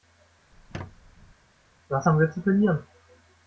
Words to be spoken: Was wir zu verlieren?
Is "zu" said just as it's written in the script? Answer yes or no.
yes